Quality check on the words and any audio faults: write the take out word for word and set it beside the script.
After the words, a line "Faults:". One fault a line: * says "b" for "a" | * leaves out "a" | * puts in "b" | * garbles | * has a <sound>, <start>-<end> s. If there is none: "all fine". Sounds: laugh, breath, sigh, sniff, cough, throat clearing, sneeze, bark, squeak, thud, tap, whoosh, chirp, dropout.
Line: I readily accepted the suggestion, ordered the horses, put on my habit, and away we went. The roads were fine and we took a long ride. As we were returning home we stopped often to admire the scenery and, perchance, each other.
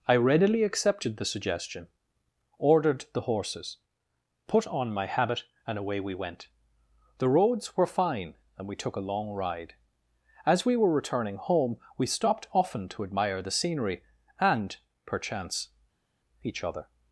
I readily accepted the suggestion, ordered the horses, put on my habit, and away we went. The roads were fine and we took a long ride. As we were returning home we stopped often to admire the scenery and, perchance, each other.
Faults:
all fine